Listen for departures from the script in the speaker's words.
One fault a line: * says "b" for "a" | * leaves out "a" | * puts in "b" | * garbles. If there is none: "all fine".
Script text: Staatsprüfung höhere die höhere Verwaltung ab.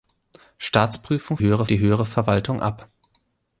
all fine